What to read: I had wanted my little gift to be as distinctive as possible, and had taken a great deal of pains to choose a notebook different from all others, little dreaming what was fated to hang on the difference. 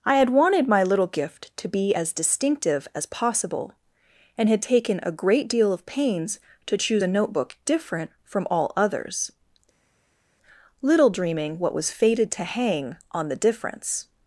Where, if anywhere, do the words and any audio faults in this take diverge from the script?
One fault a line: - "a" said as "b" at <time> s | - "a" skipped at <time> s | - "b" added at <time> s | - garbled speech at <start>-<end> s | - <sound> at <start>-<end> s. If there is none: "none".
none